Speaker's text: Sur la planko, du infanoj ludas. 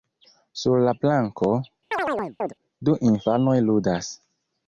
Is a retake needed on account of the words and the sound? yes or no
yes